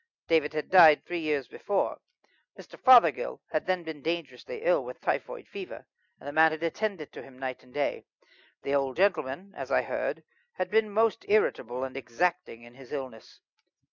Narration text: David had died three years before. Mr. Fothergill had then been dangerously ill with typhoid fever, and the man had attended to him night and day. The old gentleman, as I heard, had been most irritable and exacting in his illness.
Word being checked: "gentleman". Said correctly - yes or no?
yes